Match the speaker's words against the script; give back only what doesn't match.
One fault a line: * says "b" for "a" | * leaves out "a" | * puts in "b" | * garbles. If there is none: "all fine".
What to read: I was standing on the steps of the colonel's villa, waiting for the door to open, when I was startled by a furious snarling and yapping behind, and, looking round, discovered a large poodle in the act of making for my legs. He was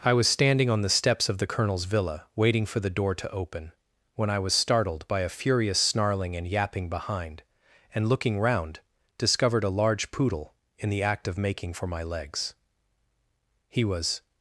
all fine